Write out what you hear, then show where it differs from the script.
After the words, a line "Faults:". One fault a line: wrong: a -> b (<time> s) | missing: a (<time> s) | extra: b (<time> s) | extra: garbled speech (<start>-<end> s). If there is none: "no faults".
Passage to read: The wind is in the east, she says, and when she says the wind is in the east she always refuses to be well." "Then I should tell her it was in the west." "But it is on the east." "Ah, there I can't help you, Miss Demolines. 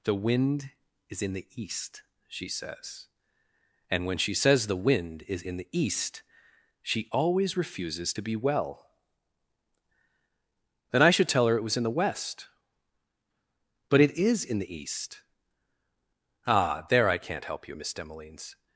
The wind is in the east, she says, and when she says the wind is in the east she always refuses to be well." "Then I should tell her it was in the west." "But it is in the east." "Ah, there I can't help you, Miss Demolines.
Faults:
wrong: on -> in (14.4 s)